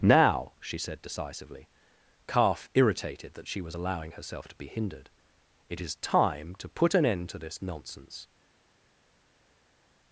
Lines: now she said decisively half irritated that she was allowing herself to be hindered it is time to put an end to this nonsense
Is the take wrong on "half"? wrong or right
wrong